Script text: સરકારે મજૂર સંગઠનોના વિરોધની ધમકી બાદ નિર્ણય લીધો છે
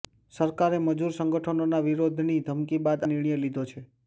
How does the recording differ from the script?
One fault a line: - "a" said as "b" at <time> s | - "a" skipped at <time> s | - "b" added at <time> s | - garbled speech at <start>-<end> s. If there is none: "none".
none